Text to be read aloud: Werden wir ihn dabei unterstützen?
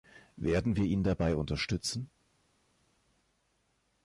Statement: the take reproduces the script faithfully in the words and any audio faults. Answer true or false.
true